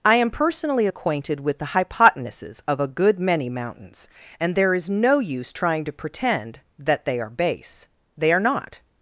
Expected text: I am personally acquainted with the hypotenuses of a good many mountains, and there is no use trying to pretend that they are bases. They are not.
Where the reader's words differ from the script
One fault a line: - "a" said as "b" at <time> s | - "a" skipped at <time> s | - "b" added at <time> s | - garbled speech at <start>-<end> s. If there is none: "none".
- "bases" said as "base" at 7.3 s